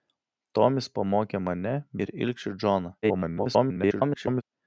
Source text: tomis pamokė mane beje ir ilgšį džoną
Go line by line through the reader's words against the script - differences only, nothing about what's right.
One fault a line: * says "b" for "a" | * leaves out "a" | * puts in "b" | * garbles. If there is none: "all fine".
* leaves out "beje"
* garbles